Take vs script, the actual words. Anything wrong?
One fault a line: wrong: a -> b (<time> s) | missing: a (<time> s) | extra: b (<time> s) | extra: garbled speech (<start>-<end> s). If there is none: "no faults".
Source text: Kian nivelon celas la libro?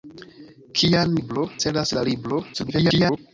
wrong: nivelon -> libro (1.2 s)
extra: garbled speech (2.5-3.2 s)